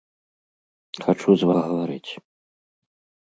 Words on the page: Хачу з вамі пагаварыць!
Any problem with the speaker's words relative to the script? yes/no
yes